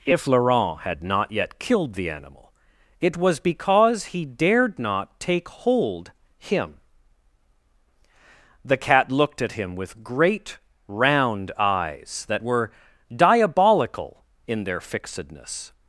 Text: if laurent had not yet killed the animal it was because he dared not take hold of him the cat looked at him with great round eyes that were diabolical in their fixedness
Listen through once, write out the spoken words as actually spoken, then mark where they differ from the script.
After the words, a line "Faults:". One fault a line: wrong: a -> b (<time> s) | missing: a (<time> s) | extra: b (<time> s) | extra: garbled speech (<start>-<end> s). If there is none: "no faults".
if laurent had not yet killed the animal it was because he dared not take hold him the cat looked at him with great round eyes that were diabolical in their fixedness
Faults:
missing: of (6.1 s)